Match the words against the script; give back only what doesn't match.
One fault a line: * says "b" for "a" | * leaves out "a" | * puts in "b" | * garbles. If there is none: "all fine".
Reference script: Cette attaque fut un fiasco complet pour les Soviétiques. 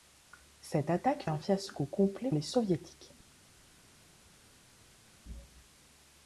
* leaves out "fut"
* leaves out "pour"